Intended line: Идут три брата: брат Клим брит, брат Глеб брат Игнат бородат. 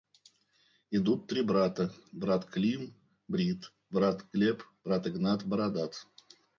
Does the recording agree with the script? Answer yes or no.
yes